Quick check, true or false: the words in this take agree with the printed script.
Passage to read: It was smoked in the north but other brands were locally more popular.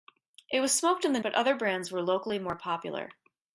false